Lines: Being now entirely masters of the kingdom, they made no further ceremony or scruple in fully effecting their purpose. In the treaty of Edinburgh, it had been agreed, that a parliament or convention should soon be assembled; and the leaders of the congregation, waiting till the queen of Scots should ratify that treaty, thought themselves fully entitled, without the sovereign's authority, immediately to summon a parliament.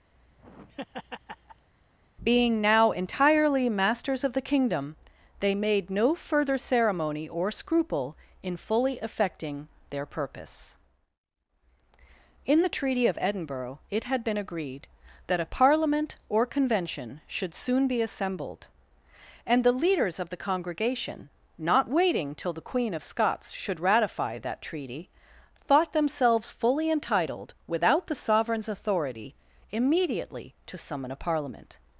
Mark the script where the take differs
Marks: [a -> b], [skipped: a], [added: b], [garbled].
Being now entirely masters of the kingdom, they made no further ceremony or scruple in fully effecting their purpose. In the treaty of Edinburgh, it had been agreed, that a parliament or convention should soon be assembled; and the leaders of the congregation, [added: not] waiting till the queen of Scots should ratify that treaty, thought themselves fully entitled, without the sovereign's authority, immediately to summon a parliament.